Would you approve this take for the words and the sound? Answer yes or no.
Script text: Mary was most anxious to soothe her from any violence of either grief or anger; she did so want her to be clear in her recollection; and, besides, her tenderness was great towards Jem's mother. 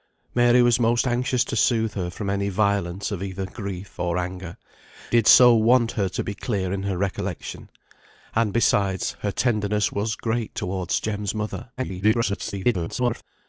no